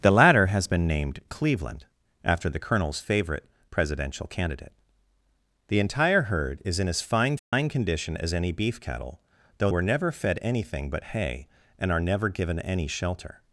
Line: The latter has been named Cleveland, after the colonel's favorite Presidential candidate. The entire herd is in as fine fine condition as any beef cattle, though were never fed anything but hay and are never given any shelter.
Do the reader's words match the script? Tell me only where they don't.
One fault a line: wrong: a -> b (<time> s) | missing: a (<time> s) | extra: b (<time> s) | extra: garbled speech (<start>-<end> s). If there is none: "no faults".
no faults